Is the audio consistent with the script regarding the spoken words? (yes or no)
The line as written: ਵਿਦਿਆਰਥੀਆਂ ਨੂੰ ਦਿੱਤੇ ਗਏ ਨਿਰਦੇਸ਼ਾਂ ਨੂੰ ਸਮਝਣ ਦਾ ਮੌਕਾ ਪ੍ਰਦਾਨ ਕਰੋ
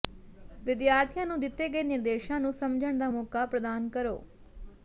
yes